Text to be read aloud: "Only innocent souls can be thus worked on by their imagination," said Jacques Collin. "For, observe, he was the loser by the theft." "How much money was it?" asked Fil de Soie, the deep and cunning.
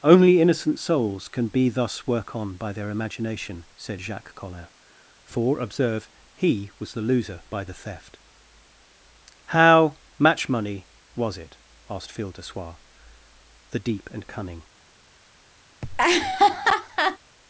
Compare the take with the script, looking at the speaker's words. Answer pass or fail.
fail